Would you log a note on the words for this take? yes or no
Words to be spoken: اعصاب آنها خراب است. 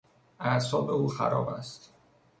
yes